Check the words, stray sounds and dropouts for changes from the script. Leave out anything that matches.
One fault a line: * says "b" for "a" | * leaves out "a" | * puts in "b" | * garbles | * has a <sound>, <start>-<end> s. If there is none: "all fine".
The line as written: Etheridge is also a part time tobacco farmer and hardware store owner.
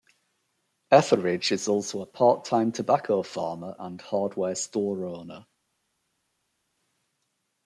all fine